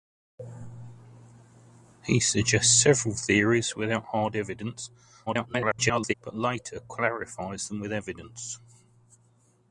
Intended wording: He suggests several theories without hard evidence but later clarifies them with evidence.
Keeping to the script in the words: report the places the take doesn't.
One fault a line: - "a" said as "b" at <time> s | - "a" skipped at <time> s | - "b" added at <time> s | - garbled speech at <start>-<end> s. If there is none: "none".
- garbled speech at 5.3-6.1 s